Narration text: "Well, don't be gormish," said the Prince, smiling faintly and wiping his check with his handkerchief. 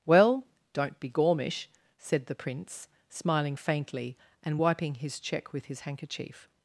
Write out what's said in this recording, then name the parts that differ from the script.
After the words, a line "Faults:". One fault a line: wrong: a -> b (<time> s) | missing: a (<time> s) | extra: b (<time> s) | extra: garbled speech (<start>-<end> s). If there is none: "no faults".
"Well, don't be gormish," said the Prince, smiling faintly and wiping his check with his handkerchief.
Faults:
no faults